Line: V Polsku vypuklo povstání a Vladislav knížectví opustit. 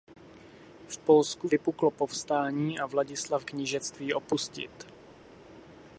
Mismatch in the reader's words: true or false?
false